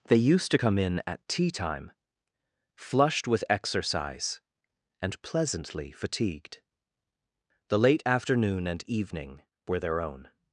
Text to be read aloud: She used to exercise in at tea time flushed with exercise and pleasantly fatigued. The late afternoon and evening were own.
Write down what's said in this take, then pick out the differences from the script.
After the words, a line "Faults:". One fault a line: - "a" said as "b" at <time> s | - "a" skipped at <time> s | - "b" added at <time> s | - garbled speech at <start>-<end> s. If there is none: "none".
They used to come in at tea time flushed with exercise and pleasantly fatigued. The late afternoon and evening were their own.
Faults:
- "She" said as "They" at 0.1 s
- "exercise" said as "come" at 0.5 s
- "their" added at 9.8 s